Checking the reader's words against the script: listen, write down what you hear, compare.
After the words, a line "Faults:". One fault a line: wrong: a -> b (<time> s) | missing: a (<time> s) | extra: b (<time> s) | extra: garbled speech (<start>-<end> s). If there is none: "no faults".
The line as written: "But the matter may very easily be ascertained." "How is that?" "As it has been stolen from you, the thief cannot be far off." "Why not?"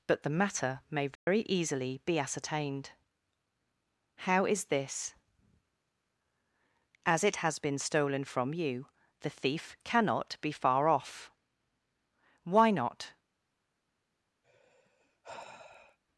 "But the matter may very easily be ascertained." "How is this?" "As it has been stolen from you, the thief cannot be far off." "Why not?"
Faults:
wrong: that -> this (4.7 s)